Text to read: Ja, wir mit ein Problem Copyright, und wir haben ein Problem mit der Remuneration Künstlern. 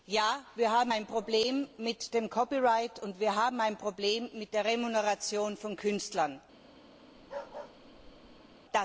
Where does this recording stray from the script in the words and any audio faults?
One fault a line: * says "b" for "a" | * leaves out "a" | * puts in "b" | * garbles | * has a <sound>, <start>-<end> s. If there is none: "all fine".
* says "haben" for "mit"
* puts in "mit dem"
* puts in "von"
* has a bark, 7.2-8.6 s